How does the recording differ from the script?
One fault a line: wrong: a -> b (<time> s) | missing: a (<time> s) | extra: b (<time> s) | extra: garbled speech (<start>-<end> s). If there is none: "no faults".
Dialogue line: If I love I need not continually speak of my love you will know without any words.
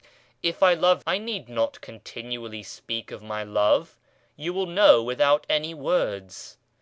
no faults